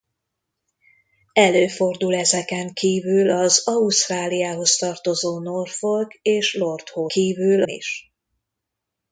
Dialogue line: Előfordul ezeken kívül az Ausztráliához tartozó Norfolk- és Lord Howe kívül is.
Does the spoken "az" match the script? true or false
true